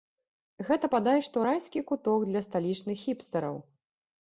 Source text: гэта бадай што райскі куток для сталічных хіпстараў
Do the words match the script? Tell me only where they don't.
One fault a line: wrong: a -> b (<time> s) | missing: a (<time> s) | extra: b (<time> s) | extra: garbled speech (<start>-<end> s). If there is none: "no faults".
no faults